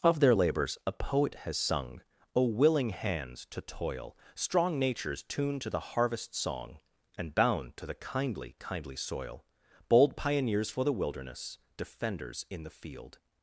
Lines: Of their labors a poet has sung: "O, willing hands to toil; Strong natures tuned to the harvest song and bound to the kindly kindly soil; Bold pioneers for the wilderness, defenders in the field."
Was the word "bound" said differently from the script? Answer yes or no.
no